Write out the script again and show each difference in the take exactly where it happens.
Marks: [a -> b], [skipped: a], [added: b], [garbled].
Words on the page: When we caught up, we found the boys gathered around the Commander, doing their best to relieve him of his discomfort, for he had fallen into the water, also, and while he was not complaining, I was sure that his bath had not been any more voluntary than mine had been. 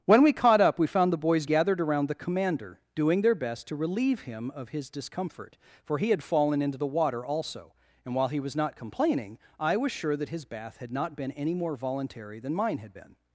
When we caught up, we found the boys gathered around the Commander, doing their best to relieve him of his discomfort, for he had fallen into the water, also, and while he was not complaining, I was sure that his bath had not been any more voluntary than mine had been.